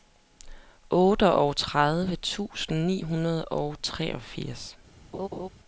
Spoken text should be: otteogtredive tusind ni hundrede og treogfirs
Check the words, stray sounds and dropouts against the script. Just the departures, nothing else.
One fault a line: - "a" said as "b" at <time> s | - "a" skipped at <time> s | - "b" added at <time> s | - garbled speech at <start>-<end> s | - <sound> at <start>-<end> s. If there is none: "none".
- laugh at 5.1-5.5 s